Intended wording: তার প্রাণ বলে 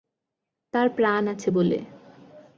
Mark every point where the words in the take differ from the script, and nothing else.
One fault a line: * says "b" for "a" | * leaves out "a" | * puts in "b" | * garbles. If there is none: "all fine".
* puts in "আছে"